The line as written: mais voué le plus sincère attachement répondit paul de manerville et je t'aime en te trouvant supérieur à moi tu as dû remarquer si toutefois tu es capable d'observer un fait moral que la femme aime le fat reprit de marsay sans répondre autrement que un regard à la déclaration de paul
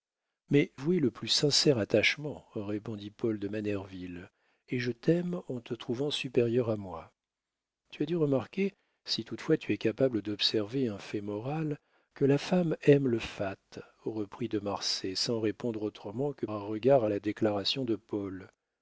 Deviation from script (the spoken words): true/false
false